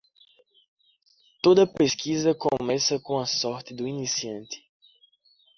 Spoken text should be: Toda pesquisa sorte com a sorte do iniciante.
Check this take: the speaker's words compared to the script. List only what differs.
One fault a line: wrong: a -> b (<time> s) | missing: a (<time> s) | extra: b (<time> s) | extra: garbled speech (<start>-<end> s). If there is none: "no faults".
wrong: sorte -> começa (2.3 s)